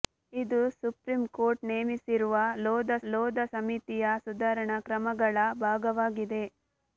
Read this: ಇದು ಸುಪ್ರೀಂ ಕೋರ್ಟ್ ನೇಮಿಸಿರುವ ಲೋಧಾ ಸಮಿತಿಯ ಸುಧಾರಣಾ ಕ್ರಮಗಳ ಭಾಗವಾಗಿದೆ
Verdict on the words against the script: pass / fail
fail